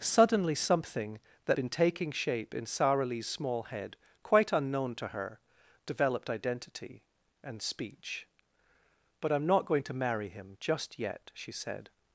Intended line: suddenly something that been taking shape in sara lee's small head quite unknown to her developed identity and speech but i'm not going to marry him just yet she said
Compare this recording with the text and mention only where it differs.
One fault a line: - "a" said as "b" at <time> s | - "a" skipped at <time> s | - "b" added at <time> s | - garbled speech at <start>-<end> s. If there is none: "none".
none